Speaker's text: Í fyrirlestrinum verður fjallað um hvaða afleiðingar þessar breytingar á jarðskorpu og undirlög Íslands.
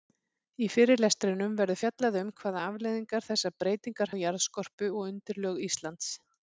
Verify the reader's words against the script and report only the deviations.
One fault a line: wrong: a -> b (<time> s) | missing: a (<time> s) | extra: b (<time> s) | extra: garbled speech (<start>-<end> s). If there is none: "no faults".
no faults